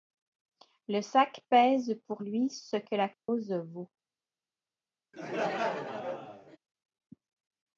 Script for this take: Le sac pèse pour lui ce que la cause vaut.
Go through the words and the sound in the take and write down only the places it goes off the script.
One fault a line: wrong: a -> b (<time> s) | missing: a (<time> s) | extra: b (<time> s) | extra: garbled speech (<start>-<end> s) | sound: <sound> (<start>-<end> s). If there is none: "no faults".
sound: dropout (3.1-3.3 s)
sound: laugh (5.1-6.6 s)